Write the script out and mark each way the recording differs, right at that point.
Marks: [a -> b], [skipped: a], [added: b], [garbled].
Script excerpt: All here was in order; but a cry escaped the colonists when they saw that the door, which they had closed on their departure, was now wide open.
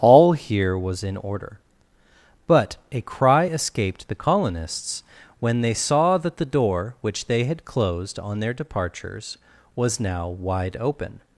All here was in order; but a cry escaped the colonists when they saw that the door, which they had closed on their [departure, -> departures] was now wide open.